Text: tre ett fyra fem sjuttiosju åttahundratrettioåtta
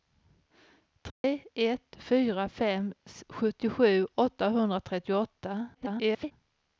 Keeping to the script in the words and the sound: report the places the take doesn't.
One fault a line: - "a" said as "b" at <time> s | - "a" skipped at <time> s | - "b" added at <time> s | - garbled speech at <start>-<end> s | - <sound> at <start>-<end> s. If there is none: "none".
- dropout at 1.1-1.2 s
- garbled speech at 5.7-6.3 s